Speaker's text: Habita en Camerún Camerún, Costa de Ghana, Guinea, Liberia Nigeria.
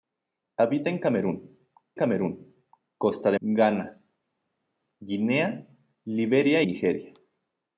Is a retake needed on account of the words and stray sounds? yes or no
no